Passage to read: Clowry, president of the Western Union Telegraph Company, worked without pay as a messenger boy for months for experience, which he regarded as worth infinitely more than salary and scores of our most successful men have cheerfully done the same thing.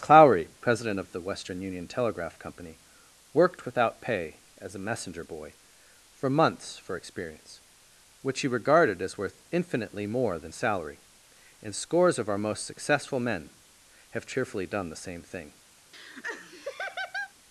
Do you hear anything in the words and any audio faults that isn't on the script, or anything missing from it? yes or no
yes